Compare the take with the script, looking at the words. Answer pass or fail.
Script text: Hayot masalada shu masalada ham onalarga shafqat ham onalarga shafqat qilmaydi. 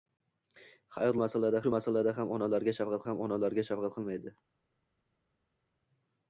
pass